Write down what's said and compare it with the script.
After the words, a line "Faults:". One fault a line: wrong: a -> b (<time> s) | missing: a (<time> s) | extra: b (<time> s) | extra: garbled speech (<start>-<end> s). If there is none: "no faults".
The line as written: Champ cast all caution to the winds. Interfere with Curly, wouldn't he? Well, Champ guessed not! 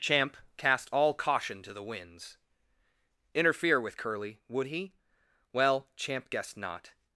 Champ cast all caution to the winds. Interfere with Curly, would he? Well, Champ guessed not!
Faults:
wrong: wouldn't -> would (4.5 s)